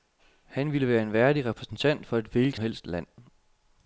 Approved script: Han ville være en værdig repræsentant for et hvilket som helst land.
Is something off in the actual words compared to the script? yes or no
yes